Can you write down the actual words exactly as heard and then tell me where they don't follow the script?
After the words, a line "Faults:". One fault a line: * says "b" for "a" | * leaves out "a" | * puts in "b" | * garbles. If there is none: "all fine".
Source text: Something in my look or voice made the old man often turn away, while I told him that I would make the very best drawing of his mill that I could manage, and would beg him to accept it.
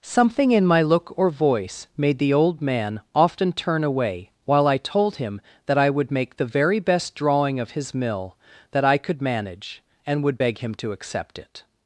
Something in my look or voice made the old man often turn away, while I told him that I would make the very best drawing of his mill that I could manage, and would beg him to accept it.
Faults:
all fine